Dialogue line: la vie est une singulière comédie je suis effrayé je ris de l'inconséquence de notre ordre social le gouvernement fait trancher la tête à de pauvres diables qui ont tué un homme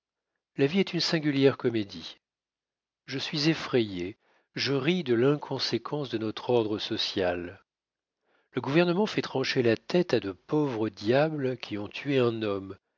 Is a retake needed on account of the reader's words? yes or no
no